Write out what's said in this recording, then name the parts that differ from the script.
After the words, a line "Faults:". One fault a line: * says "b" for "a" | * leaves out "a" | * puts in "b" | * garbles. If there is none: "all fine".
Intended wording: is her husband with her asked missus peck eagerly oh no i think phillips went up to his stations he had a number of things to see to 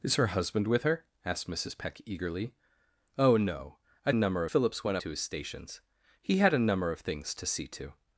is her husband with her asked missus peck eagerly oh no i number phillips went to his stations he had a number of things to see to
Faults:
* says "number" for "think"
* leaves out "up"